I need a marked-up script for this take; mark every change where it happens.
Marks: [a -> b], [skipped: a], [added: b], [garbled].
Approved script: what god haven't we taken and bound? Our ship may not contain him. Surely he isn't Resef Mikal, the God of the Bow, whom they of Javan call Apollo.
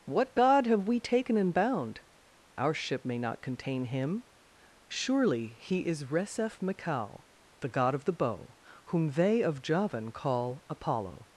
what god [haven't -> have] we taken and bound? Our ship may not contain him. Surely he [isn't -> is] Resef Mikal, the God of the Bow, whom they of Javan call Apollo.